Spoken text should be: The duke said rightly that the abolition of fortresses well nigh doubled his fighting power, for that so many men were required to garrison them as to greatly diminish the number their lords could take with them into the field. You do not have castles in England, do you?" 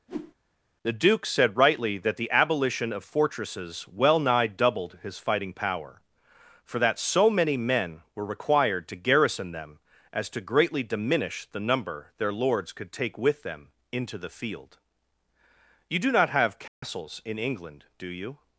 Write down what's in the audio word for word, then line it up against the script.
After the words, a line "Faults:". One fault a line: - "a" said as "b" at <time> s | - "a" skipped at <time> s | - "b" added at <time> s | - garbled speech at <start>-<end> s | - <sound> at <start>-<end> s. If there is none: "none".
The duke said rightly that the abolition of fortresses well nigh doubled his fighting power, for that so many men were required to garrison them as to greatly diminish the number their lords could take with them into the field. You do not have castles in England, do you?"
Faults:
- whoosh at 0.1-0.3 s
- dropout at 16.7-16.8 s